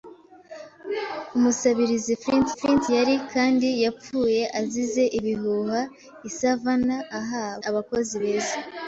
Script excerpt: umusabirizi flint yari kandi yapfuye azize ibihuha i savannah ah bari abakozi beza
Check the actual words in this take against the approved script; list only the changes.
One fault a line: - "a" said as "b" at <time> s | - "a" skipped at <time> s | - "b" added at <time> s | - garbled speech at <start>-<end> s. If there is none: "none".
- "flint" added at 2.6 s
- "bari" skipped at 7.5 s